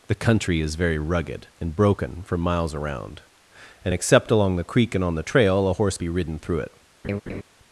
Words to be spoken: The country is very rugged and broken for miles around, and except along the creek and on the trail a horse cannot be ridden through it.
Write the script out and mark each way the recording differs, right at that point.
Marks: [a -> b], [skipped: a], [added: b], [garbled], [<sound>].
The country is very rugged and broken for miles around, and except along the creek and on the trail a horse [skipped: cannot] be ridden through it. [laugh]